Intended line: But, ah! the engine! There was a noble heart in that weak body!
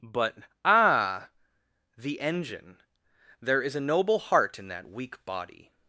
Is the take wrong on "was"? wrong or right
wrong